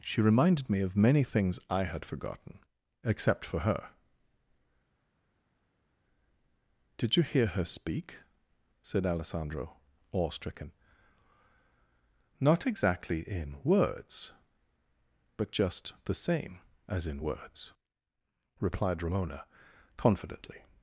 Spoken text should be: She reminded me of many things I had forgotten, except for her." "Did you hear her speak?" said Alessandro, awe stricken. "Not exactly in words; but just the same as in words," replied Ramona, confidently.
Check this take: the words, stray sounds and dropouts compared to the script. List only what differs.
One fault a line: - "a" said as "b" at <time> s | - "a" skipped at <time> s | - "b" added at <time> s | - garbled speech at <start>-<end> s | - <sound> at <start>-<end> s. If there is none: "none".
none